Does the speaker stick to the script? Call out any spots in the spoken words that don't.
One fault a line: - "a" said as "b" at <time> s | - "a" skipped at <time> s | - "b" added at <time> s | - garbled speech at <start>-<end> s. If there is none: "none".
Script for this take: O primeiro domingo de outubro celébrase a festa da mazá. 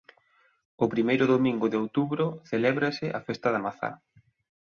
none